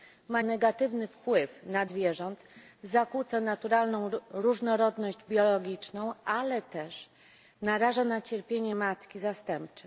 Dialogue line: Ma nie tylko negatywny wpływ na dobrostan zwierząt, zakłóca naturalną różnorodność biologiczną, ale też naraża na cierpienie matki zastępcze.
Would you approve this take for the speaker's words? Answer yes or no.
no